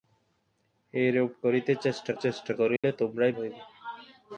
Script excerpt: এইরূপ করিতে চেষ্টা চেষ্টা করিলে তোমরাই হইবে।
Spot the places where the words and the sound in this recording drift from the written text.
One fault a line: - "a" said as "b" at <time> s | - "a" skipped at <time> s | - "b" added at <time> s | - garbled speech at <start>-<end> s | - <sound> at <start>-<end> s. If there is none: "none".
- dropout at 2.8-2.8 s